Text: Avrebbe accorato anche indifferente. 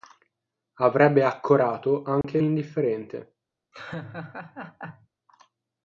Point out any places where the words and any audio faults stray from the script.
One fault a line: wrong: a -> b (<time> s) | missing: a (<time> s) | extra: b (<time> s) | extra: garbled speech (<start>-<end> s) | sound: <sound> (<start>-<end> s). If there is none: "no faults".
sound: dropout (2.2-2.2 s)
sound: laugh (3.7-5.1 s)